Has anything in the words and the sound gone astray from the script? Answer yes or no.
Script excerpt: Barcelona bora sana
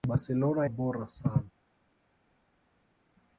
no